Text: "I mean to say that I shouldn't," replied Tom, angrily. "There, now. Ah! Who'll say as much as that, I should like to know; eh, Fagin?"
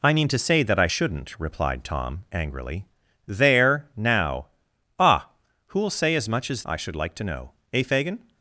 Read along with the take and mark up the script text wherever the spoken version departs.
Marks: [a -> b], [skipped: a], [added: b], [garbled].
"I mean to say that I shouldn't," replied Tom, angrily. "There, now. Ah! Who'll say as much as [skipped: that,] I should like to know; eh, Fagin?"